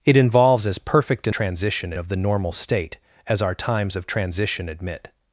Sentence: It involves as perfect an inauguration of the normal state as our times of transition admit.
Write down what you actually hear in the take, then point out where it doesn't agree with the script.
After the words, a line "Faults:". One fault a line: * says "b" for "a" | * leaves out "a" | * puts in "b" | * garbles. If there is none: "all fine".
It involves as perfect an transition of the normal state as our times of transition admit.
Faults:
* says "transition" for "inauguration"